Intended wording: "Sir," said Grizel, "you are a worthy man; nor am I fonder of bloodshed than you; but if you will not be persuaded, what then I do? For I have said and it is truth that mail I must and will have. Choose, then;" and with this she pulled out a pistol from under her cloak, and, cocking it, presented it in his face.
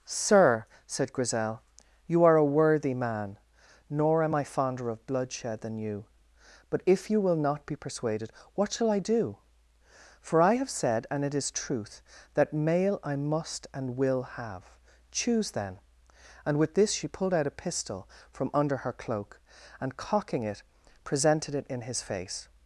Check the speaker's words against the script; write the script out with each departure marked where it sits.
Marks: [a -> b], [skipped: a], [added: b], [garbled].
"Sir," said Grizel, "you are a worthy man; nor am I fonder of bloodshed than you; but if you will not be persuaded, what [then -> shall] I do? For I have said and it is truth that mail I must and will have. Choose, then;" and with this she pulled out a pistol from under her cloak, and, cocking it, presented it in his face.